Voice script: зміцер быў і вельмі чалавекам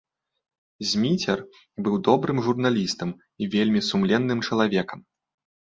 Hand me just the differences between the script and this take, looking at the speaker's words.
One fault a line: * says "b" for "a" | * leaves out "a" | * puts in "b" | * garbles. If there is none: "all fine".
* puts in "добрым журналістам"
* puts in "сумленным"